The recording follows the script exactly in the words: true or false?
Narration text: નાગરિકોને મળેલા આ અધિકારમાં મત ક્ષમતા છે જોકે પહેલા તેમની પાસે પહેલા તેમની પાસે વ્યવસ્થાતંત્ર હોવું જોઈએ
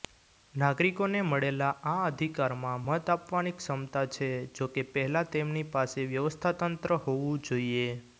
false